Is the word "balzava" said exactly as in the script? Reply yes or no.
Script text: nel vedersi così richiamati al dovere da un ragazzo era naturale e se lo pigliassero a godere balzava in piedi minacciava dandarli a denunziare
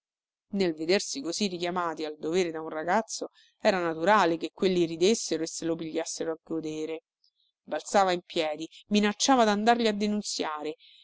yes